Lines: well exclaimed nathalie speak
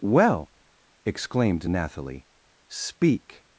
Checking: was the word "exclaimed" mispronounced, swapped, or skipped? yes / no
no